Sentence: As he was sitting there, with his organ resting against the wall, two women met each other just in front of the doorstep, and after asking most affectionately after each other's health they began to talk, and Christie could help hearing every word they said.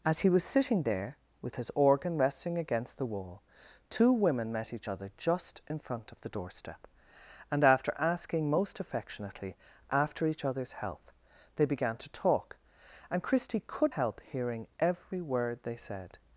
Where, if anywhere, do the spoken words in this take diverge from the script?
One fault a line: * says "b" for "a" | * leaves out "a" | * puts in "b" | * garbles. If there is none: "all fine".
all fine